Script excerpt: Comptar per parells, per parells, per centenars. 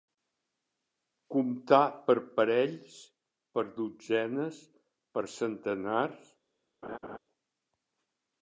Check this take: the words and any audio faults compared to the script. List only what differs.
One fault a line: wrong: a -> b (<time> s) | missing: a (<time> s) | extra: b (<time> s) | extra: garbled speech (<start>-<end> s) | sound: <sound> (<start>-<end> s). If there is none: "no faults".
wrong: parells -> dotzenes (3.8 s)
sound: laugh (6.8-7.2 s)